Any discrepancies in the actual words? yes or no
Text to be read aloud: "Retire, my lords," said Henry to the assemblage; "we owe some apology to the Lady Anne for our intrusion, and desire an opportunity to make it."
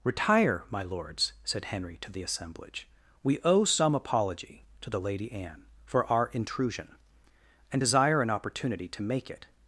no